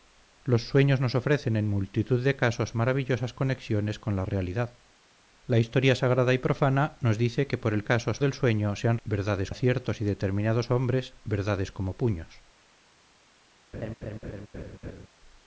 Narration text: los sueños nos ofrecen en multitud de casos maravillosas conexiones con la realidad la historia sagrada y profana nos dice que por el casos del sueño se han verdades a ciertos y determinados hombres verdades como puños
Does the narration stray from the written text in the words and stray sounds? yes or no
yes